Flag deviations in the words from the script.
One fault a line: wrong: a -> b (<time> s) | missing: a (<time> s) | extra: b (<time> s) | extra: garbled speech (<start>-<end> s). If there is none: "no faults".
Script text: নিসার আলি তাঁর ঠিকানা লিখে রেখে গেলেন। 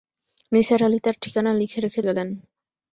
no faults